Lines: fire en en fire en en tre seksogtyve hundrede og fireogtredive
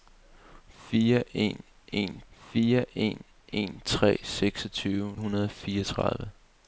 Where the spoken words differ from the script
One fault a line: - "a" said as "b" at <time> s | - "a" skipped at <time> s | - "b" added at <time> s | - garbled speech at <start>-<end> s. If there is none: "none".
none